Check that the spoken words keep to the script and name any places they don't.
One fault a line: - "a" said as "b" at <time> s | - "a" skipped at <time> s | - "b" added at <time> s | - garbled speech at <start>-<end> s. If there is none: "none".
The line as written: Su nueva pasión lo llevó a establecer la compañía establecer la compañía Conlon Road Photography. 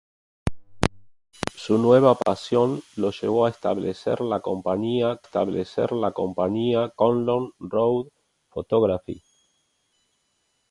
none